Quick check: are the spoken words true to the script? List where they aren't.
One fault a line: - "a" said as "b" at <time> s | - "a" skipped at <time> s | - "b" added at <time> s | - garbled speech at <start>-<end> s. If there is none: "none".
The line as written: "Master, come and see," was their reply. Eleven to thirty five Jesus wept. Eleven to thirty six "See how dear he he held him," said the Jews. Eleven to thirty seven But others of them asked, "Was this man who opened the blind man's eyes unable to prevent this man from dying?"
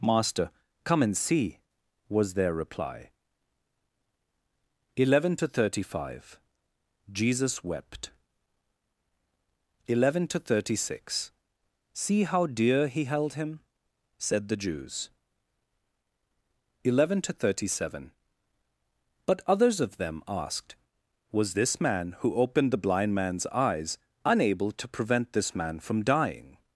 - "he" skipped at 13.1 s